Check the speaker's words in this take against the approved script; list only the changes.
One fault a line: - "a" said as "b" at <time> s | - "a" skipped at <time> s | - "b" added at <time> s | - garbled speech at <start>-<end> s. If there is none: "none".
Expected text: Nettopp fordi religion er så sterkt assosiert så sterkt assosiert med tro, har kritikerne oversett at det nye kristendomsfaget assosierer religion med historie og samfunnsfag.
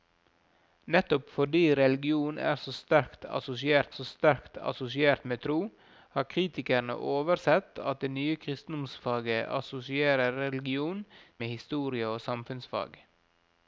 none